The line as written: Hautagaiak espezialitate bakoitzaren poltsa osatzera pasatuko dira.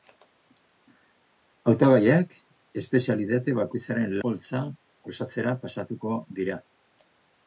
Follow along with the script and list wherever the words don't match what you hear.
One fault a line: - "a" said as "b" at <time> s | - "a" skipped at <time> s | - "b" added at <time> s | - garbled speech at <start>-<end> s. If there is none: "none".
none